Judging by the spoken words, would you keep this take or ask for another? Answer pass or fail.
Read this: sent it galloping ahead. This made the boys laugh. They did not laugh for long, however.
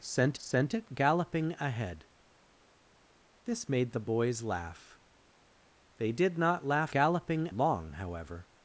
fail